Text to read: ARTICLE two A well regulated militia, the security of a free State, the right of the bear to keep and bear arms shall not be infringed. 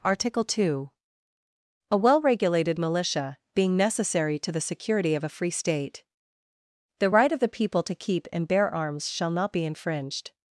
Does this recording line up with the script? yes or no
no